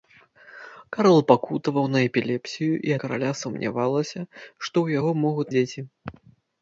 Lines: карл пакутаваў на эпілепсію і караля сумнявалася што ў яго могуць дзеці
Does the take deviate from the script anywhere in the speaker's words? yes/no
no